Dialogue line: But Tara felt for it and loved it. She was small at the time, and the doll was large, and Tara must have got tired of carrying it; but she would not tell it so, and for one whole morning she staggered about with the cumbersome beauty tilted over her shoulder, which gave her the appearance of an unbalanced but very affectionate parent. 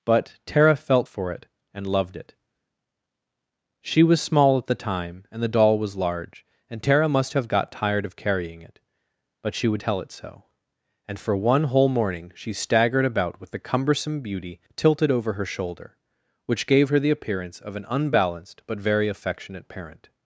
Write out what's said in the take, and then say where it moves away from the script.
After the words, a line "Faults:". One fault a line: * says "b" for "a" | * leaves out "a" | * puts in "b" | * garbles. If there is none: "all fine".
But Tara felt for it and loved it. She was small at the time, and the doll was large, and Tara must have got tired of carrying it; but she would tell it so, and for one whole morning she staggered about with the cumbersome beauty tilted over her shoulder, which gave her the appearance of an unbalanced but very affectionate parent.
Faults:
* leaves out "not"